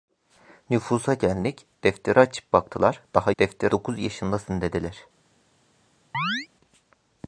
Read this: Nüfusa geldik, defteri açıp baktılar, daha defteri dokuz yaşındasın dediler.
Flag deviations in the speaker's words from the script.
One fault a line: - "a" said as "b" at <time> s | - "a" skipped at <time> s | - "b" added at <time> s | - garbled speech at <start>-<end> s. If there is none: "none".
none